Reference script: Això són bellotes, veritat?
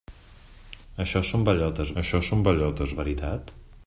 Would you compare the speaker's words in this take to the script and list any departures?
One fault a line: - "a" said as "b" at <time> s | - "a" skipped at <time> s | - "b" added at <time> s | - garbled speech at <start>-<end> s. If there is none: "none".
- "això són bellotes" added at 2.0 s